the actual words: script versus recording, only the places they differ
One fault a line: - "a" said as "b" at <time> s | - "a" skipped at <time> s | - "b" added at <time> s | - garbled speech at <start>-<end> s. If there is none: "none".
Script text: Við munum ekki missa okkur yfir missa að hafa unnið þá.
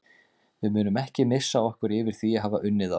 - "missa" said as "því" at 2.2 s